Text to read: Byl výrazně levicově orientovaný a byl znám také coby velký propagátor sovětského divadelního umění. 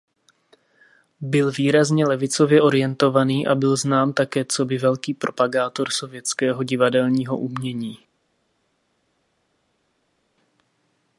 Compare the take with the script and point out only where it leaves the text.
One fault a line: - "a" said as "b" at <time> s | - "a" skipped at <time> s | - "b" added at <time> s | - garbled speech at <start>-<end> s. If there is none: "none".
none